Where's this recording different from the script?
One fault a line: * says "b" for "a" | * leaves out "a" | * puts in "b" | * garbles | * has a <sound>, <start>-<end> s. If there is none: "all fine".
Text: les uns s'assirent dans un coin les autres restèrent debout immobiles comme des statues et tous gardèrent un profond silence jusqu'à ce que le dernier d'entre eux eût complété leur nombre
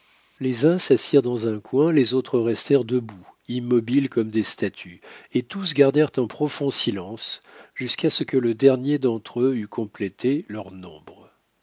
all fine